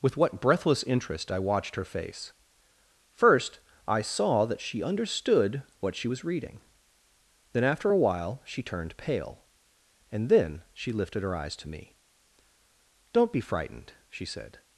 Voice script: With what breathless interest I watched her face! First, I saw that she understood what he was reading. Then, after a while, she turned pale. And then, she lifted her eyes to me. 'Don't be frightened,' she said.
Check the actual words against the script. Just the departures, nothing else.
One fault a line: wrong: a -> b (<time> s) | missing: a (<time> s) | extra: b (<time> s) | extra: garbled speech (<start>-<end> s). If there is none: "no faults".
wrong: he -> she (6.0 s)